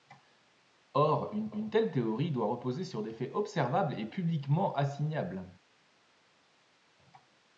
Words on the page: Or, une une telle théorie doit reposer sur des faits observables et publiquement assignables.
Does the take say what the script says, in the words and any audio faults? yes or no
yes